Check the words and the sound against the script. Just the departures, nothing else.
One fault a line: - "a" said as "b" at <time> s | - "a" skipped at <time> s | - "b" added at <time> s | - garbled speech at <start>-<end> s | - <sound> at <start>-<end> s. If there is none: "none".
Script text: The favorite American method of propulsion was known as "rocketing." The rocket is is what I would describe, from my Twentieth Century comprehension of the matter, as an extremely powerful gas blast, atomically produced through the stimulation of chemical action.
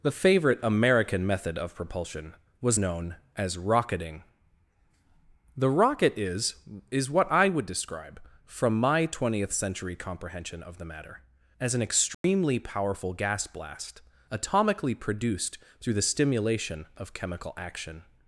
- dropout at 12.1-12.2 s